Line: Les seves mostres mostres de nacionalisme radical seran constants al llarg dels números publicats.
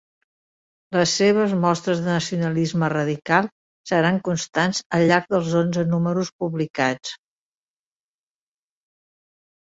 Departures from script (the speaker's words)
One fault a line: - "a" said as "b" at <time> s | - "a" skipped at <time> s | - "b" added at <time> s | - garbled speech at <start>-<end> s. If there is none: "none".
- "mostres" skipped at 2.0 s
- "onze" added at 5.6 s